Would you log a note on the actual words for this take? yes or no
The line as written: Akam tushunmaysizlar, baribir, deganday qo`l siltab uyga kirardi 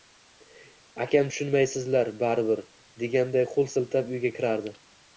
no